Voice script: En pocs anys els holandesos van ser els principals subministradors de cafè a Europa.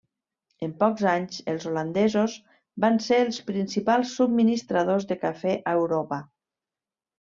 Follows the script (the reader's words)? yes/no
yes